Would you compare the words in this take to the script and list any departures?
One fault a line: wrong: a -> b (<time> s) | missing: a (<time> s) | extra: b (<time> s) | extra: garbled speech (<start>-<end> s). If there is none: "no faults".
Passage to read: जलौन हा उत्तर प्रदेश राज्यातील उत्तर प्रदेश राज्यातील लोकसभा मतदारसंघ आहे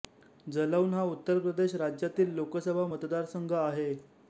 missing: उत्तर प्रदेश राज्यातील (2.3 s)